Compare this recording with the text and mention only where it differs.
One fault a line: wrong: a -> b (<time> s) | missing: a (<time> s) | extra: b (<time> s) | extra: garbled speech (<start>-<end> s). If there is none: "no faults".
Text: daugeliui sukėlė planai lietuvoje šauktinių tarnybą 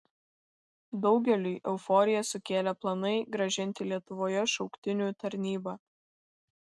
extra: euforiją (1.7 s)
extra: grąžinti (3.4 s)